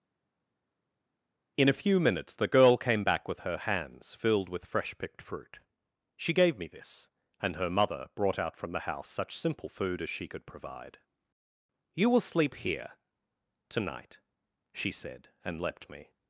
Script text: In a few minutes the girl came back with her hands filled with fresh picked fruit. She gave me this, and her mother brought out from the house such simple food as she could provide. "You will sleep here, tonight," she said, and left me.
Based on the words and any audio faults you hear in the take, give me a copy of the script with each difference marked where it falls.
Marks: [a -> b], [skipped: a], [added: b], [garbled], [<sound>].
In a few minutes the girl came back with her hands filled with fresh picked fruit. She gave me this, and her mother brought out from the house such simple food as she could provide. "You will sleep here, tonight," she said, and [left -> leapt] me.